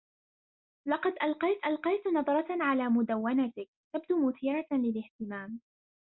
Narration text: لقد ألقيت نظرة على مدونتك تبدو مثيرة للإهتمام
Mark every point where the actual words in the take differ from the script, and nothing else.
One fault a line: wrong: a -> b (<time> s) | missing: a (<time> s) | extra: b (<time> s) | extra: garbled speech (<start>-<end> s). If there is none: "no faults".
extra: ألقيت (1.6 s)